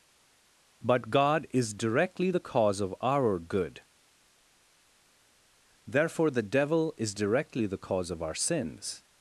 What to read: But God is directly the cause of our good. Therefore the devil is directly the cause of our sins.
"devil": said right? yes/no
yes